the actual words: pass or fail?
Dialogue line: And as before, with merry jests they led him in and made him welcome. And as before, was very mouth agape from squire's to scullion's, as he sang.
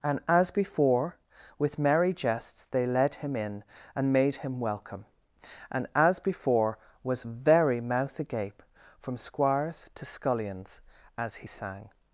pass